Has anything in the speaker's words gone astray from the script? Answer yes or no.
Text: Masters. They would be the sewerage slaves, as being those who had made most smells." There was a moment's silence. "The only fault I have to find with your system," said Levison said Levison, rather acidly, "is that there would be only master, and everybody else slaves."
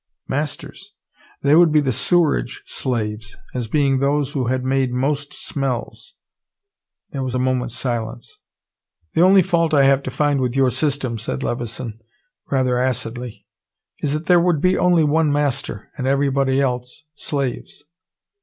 yes